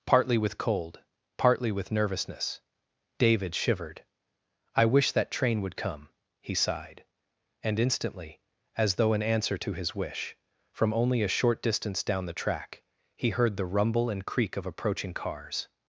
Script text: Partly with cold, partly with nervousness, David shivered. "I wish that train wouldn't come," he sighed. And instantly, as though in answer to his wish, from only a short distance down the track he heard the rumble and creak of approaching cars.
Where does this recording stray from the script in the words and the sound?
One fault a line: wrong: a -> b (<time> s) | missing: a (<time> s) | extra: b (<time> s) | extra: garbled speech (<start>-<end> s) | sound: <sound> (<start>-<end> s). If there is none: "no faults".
wrong: wouldn't -> would (5.6 s)